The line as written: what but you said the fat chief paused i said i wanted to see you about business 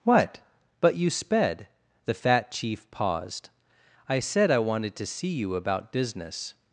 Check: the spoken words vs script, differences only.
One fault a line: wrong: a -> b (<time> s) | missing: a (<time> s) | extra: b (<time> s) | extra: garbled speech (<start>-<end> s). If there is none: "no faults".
wrong: said -> sped (1.1 s)